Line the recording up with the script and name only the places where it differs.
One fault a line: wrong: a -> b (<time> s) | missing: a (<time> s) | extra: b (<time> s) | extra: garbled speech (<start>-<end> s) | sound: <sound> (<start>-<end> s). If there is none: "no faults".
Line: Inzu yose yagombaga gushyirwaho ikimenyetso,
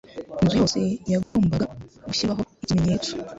sound: dropout (1.2-1.4 s)